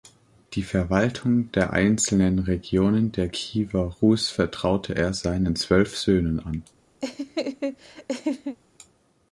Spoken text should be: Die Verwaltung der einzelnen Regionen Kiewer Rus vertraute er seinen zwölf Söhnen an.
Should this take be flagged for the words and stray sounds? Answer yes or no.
yes